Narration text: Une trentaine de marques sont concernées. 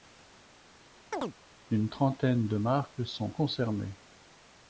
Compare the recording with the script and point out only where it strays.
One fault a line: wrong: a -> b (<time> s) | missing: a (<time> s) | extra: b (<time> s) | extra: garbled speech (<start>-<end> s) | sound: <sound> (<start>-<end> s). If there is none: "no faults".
sound: chirp (1.1-1.3 s)